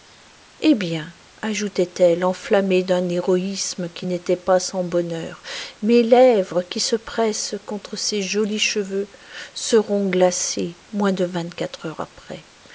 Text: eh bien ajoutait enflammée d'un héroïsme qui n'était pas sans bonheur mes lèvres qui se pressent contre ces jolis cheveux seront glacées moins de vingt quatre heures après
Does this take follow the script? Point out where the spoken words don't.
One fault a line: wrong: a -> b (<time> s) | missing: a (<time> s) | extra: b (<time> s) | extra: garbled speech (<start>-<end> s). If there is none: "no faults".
extra: elle (2.0 s)